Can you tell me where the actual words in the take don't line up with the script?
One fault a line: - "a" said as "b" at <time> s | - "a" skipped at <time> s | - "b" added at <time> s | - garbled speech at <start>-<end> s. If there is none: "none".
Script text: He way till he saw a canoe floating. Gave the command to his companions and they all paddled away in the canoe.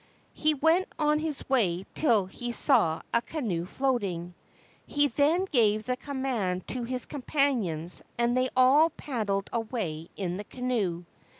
- "went on his" added at 0.6 s
- "He then" added at 4.8 s